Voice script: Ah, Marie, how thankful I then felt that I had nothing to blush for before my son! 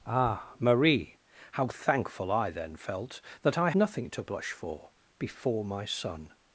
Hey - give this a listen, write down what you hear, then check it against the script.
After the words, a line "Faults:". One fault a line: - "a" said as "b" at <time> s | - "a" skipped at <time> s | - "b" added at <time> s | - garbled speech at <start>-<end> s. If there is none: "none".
Ah, Marie, how thankful I then felt that I nothing to blush for before my son!
Faults:
- "had" skipped at 3.7 s